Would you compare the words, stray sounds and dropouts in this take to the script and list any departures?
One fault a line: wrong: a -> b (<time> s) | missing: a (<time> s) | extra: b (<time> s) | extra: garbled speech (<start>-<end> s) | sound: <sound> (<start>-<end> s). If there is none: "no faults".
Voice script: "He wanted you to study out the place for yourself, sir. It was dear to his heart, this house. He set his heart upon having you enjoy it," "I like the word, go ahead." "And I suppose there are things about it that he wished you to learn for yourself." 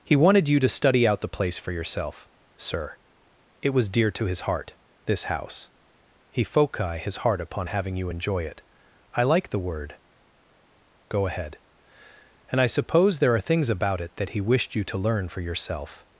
wrong: set -> foci (6.4 s)